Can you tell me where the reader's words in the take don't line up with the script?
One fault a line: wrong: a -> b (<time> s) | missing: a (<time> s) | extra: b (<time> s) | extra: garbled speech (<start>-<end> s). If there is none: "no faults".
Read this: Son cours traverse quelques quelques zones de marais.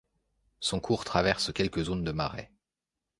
missing: quelques (1.8 s)